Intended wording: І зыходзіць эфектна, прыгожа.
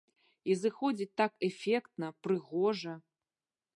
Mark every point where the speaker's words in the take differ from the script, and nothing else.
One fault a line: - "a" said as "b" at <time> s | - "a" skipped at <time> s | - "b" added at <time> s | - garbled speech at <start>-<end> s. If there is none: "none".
- "так" added at 1.2 s